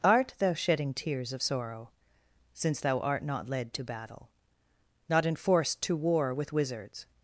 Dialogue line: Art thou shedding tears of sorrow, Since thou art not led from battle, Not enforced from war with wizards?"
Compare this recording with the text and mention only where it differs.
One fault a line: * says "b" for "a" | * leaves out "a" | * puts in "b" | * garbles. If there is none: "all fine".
* says "to" for "from"
* says "to" for "from"